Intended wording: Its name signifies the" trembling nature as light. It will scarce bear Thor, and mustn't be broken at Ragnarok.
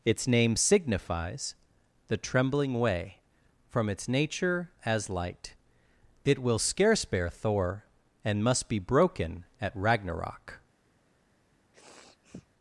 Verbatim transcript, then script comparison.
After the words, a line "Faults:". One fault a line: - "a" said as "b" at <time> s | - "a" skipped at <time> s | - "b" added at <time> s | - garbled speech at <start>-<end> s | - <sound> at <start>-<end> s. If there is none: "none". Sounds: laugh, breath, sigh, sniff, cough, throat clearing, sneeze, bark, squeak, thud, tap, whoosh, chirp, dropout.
Its name signifies the" trembling way," from its nature as light. It will scarce bear Thor, and must be broken at Ragnarok.
Faults:
- "way from its" added at 2.8 s
- "mustn't" said as "must" at 8.4 s
- sniff at 11.7-12.5 s